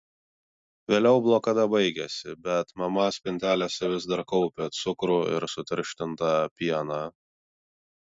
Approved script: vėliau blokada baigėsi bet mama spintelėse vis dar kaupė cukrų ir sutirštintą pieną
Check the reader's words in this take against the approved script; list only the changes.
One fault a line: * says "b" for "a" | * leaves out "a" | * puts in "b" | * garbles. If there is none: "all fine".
all fine